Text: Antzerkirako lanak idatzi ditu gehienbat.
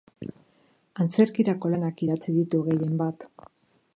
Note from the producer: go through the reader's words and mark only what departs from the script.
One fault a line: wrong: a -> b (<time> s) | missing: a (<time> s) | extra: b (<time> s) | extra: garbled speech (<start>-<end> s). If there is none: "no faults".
no faults